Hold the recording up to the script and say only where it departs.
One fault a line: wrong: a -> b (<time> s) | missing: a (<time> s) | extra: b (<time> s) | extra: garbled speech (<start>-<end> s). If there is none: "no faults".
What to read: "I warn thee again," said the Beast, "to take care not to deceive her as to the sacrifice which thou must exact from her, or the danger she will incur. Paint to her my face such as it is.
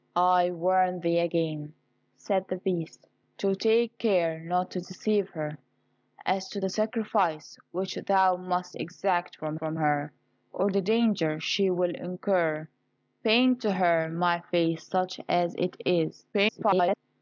extra: from (9.5 s)
extra: garbled speech (16.3-17.0 s)